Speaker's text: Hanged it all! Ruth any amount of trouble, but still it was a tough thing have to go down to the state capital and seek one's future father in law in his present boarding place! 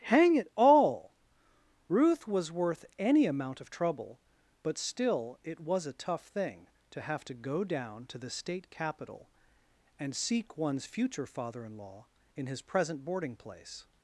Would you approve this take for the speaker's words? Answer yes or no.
no